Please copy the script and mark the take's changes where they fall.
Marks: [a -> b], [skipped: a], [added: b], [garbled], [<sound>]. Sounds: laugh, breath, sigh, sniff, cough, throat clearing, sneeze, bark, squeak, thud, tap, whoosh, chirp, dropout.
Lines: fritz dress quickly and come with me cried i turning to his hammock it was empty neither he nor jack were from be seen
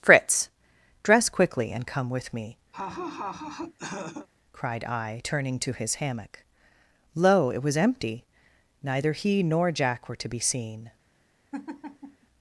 fritz dress quickly and come with me [laugh] cried i turning to his hammock [added: lo] it was empty neither he nor jack were [from -> to] be seen [laugh]